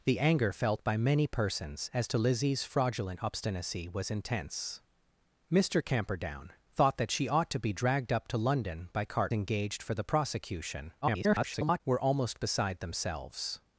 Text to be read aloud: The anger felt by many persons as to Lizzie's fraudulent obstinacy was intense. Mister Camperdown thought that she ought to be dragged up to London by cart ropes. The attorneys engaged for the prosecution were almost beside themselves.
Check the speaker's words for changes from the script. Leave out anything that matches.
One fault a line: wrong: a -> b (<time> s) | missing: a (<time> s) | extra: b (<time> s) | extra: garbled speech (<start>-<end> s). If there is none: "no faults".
missing: ropes The attorneys (9.3 s)
extra: garbled speech (11.0-11.8 s)